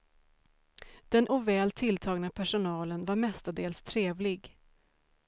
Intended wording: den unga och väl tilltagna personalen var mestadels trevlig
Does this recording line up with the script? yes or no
no